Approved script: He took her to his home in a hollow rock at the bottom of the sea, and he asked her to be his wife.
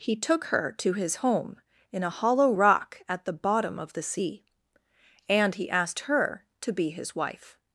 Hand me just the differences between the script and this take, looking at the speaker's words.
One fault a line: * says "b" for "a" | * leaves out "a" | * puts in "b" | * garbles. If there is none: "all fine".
all fine